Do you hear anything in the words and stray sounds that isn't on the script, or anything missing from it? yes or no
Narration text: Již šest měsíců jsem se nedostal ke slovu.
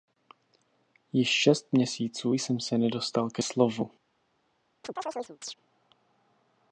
yes